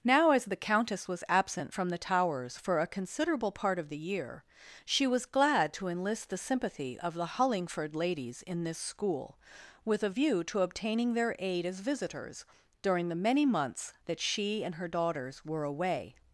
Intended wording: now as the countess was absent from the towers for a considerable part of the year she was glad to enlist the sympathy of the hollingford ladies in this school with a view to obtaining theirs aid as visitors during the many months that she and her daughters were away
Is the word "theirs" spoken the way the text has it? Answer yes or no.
no